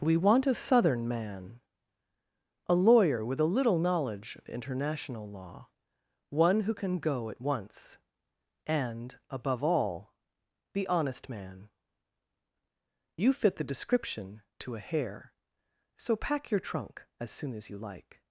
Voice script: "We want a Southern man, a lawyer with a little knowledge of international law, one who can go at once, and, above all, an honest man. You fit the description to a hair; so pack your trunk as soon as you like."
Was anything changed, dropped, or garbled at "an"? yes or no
yes